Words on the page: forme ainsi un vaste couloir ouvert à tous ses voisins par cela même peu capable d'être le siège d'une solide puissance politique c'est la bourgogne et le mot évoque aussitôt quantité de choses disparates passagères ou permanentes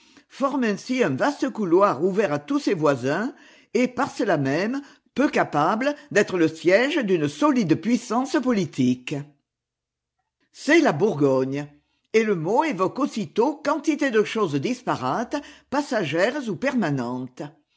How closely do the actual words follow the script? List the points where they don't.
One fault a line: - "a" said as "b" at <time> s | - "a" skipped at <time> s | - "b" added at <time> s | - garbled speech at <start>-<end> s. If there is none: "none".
- "et" added at 3.8 s